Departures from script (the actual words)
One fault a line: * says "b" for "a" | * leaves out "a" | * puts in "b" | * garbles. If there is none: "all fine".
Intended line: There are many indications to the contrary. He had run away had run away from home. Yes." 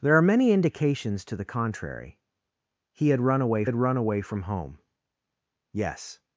all fine